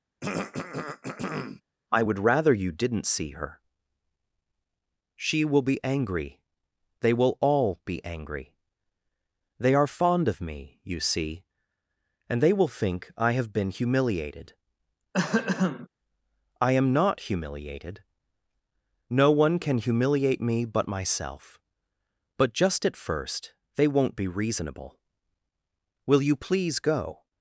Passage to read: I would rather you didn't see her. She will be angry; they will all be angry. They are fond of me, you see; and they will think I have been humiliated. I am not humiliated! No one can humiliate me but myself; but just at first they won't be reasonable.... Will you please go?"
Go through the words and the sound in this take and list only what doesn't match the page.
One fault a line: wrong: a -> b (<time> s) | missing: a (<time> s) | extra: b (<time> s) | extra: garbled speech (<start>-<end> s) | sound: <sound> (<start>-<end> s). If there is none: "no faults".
sound: throat clearing (0.2-1.6 s)
sound: throat clearing (15.1-15.9 s)